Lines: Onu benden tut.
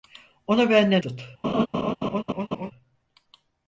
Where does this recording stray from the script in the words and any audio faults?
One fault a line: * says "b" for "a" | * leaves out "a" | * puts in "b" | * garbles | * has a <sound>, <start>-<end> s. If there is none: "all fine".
* has a laugh, 1.4-2.7 s